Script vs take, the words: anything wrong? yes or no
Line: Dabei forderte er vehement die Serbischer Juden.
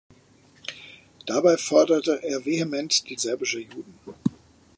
no